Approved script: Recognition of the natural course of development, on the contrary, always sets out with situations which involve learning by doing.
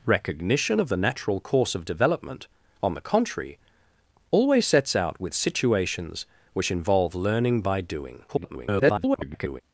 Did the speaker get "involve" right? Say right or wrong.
right